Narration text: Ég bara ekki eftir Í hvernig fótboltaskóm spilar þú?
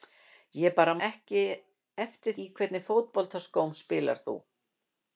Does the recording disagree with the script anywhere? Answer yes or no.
no